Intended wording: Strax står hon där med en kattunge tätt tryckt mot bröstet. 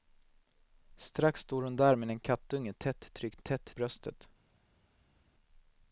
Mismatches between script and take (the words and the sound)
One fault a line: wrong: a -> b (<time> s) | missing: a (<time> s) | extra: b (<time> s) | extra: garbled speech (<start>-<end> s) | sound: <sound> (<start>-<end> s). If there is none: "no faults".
wrong: mot -> tätt (3.4 s)